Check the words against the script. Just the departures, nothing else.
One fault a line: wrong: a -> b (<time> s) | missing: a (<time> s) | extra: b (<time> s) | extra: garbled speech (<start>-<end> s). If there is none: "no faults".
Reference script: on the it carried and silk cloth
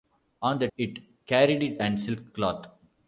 no faults